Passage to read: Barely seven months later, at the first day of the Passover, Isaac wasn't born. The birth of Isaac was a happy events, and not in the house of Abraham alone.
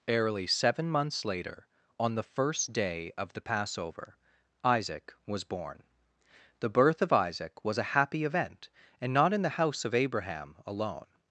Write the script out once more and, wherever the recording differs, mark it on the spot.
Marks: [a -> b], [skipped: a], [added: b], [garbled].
Barely seven months later, [at -> on] the first day of the Passover, Isaac [wasn't -> was] born. The birth of Isaac was a happy [events, -> event] and not in the house of Abraham alone.